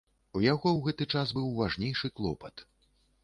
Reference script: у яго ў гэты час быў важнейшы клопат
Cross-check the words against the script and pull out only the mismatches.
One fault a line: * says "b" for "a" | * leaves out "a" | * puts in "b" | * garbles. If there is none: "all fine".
all fine